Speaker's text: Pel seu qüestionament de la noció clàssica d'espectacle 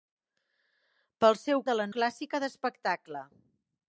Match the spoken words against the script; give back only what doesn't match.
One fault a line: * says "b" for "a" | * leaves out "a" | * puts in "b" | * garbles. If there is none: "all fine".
* leaves out "qüestionament"
* leaves out "noció"